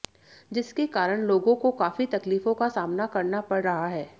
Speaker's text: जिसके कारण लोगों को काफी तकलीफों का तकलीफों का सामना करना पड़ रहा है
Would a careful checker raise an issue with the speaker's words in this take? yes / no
yes